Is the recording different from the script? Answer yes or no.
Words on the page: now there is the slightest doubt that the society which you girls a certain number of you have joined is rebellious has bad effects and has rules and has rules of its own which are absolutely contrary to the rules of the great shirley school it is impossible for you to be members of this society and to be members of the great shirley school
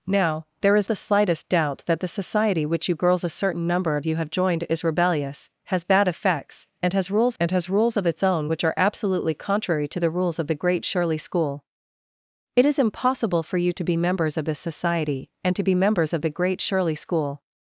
no